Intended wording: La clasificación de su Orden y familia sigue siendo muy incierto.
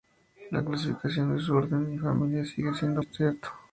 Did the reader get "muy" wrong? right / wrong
wrong